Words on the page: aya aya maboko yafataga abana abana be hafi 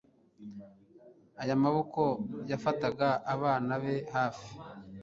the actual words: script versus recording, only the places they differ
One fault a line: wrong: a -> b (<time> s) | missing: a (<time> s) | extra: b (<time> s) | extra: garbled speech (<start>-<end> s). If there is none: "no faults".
missing: aya (1.6 s)
missing: abana (3.7 s)